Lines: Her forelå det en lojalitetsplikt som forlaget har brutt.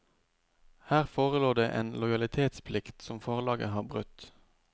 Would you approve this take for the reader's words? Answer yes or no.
yes